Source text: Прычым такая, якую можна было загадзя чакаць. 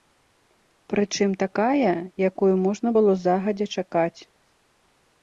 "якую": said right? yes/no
yes